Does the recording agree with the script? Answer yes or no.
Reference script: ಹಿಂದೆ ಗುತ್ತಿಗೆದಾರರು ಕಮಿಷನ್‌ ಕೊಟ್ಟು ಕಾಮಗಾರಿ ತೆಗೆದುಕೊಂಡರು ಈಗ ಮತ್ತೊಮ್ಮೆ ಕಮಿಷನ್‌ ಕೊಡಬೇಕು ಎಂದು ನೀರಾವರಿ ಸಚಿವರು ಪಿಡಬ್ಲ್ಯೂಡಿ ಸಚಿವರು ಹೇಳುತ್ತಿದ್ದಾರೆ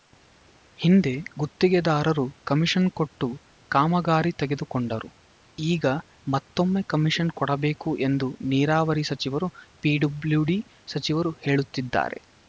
yes